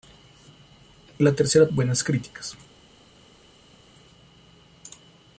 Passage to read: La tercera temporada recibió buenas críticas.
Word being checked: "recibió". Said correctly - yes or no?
no